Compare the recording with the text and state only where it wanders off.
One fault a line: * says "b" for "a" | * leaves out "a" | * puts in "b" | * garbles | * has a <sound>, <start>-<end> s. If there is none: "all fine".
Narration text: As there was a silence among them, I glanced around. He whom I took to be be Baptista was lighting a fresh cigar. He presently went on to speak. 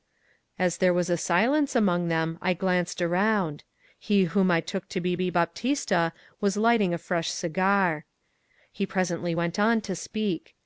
all fine